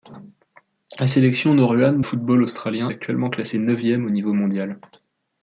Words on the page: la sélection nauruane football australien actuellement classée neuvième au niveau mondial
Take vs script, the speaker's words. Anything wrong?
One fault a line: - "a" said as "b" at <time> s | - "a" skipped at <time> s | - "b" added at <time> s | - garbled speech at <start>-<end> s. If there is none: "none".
none